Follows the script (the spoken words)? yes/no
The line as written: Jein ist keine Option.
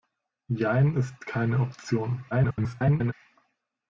no